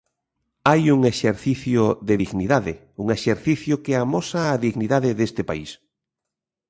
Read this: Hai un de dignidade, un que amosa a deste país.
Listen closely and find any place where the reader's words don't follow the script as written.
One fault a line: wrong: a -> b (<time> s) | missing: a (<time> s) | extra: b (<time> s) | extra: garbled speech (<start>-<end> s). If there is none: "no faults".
extra: exercicio (1.1 s)
extra: exercicio (3.2 s)
extra: dignidade (4.7 s)